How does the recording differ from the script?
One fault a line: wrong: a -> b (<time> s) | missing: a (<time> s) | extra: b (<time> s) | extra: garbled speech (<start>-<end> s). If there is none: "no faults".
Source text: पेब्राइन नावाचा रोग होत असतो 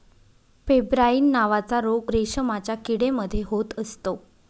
extra: रेशमाच्या किडे मध्ये (2.1 s)